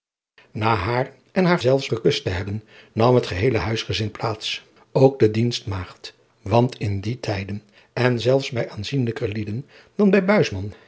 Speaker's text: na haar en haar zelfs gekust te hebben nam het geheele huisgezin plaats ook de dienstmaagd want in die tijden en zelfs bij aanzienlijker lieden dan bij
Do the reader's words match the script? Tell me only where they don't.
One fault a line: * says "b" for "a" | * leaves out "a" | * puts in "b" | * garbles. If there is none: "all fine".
all fine